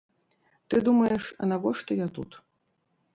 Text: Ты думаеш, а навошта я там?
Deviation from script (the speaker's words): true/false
true